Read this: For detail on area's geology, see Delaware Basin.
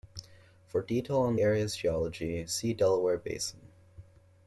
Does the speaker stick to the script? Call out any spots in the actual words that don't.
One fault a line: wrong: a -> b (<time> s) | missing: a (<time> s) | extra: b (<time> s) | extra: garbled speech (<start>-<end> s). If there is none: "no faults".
no faults